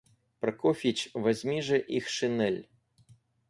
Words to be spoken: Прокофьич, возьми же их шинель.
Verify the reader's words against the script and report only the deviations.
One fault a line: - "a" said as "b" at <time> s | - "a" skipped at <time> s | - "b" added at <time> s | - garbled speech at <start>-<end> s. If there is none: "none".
none